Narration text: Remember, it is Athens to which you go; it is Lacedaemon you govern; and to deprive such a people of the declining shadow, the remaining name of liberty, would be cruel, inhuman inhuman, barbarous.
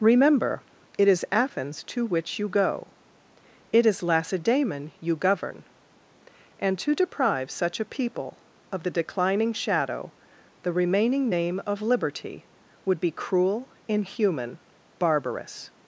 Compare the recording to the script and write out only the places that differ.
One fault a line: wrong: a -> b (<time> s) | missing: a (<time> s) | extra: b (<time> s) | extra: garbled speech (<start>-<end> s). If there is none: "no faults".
missing: inhuman (14.6 s)